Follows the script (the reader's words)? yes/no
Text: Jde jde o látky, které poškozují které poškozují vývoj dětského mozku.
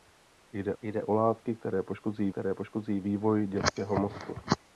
yes